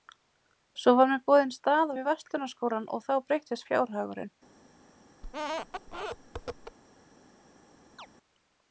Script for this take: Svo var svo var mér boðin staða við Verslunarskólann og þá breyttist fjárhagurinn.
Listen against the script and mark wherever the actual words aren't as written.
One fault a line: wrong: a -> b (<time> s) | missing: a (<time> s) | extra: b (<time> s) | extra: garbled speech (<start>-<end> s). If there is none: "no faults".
missing: svo var (1.1 s)